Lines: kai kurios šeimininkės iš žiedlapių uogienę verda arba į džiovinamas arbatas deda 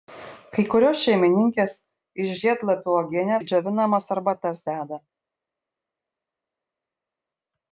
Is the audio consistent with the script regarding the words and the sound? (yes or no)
no